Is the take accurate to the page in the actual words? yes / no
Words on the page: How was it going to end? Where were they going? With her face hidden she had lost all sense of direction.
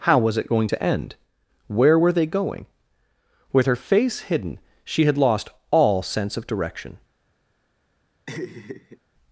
yes